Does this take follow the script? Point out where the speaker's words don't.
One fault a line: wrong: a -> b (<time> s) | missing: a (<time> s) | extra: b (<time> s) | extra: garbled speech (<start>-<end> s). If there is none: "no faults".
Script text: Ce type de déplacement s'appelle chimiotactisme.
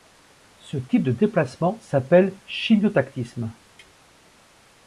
no faults